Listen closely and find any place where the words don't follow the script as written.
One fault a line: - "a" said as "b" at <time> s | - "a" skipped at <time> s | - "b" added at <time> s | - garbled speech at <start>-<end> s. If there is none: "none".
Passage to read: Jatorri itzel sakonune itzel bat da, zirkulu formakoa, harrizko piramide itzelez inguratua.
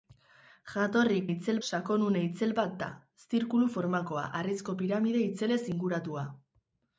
none